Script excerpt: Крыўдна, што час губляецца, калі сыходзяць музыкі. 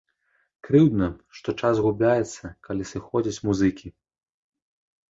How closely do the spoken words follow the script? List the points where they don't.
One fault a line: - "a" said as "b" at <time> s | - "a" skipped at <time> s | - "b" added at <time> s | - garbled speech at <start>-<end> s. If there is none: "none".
none